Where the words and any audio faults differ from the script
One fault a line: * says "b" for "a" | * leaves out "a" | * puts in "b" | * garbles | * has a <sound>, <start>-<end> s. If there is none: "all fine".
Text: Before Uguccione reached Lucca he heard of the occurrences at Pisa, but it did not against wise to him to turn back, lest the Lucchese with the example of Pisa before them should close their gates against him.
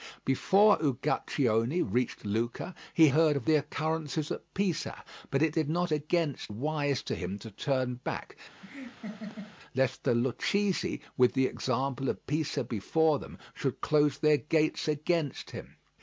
* has a laugh, 8.6-9.6 s